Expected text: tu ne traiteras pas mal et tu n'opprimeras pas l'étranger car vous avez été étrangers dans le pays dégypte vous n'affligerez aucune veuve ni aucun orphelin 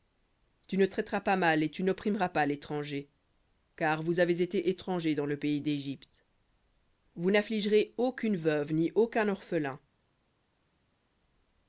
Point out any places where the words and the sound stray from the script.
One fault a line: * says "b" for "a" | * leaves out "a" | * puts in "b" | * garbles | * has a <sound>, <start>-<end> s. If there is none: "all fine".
all fine